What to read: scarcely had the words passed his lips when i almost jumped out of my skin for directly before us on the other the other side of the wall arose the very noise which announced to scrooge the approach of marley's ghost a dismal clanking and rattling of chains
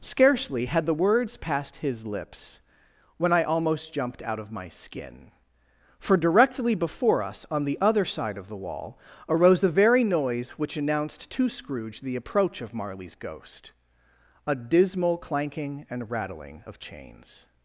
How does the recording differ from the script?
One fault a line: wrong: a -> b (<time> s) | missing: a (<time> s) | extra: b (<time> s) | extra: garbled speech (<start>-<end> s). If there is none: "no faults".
missing: the other (8.0 s)